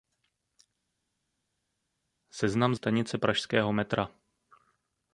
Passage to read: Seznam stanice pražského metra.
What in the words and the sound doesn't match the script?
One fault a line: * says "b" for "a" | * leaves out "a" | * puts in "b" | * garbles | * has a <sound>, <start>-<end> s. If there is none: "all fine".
all fine